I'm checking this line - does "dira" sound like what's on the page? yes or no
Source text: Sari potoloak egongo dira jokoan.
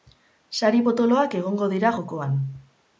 yes